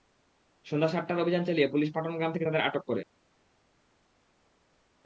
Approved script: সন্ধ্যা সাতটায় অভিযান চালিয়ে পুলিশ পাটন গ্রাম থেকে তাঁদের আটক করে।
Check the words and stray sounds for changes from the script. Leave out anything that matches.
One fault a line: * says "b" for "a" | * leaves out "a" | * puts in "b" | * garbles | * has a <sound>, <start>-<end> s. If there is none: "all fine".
all fine